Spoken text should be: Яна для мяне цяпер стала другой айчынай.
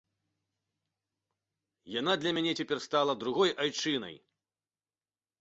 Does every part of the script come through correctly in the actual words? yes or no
yes